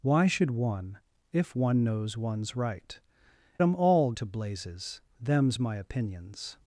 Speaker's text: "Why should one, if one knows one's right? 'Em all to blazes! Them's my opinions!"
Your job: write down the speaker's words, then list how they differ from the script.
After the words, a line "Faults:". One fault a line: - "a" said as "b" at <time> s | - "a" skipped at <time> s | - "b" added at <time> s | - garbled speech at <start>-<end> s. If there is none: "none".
"Why should one, if one knows one's right? 'Em all to blazes! Them's my opinions!"
Faults:
none